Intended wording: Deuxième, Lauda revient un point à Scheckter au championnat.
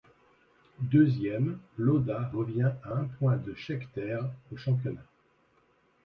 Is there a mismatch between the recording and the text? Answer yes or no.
yes